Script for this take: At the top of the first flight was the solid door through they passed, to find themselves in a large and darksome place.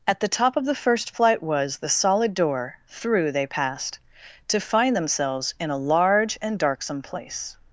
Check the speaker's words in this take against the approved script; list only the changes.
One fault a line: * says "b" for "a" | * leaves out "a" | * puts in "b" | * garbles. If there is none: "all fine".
all fine